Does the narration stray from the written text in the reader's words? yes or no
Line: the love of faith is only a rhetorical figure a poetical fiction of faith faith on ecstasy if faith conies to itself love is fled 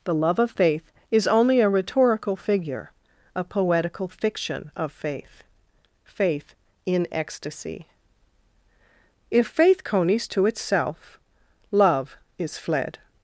yes